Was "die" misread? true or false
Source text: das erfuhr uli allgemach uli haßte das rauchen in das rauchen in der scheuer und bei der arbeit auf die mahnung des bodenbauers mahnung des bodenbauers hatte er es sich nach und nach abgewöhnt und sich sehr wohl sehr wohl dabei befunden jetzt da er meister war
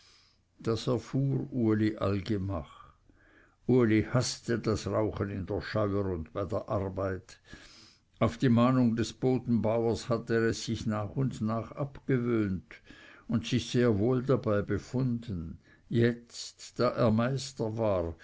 false